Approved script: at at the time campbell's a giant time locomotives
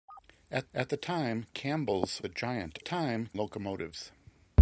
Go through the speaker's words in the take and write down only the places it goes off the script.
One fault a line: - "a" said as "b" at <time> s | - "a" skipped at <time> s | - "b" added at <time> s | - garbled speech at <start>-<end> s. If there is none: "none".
none